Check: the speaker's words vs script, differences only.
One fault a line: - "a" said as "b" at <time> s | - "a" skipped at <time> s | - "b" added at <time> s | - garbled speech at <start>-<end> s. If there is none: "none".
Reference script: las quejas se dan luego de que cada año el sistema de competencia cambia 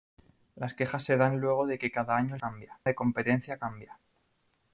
- "sistema" said as "cambia" at 2.4 s